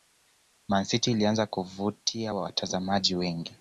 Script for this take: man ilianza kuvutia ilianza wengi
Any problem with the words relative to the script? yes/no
yes